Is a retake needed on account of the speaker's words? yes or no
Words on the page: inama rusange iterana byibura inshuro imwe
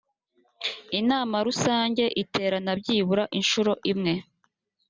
no